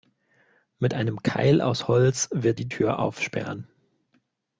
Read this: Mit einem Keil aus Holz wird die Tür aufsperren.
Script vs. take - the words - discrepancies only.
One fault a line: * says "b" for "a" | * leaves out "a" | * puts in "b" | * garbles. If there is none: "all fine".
all fine